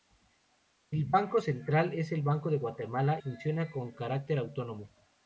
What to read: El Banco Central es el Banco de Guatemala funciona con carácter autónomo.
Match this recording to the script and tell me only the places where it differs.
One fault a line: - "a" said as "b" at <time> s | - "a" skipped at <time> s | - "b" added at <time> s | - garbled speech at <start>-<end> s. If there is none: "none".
none